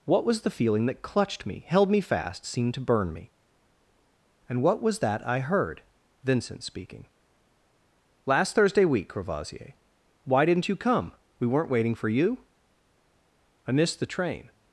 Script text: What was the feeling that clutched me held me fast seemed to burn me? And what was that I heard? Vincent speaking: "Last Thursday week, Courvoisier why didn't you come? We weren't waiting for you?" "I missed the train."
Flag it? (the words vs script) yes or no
no